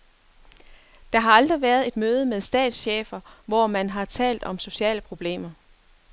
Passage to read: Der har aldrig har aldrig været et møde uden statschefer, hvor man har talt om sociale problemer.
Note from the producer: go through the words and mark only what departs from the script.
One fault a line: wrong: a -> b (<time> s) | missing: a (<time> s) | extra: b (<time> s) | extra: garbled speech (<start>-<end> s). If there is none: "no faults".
missing: har aldrig (1.6 s)
wrong: uden -> med (2.2 s)